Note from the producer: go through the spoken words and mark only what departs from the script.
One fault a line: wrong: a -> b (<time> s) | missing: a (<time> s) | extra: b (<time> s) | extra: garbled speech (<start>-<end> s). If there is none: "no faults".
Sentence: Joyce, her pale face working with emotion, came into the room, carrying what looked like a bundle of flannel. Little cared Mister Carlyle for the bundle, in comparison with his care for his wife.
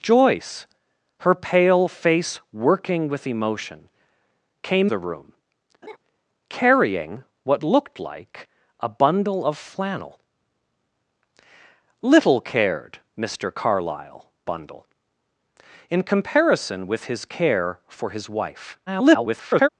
missing: into (4.9 s)
missing: for the (14.3 s)
extra: garbled speech (18.9-19.7 s)